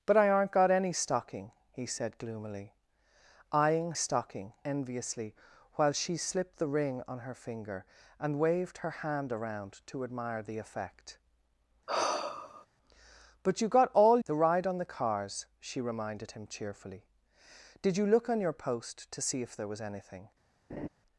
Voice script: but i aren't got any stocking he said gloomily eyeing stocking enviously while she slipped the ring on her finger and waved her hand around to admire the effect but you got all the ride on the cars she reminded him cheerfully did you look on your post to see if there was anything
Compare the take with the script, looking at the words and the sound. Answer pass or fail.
fail